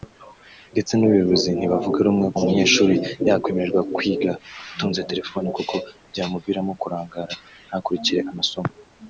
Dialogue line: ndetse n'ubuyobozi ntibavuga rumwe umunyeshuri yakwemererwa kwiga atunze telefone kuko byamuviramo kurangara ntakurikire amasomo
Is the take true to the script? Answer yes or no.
yes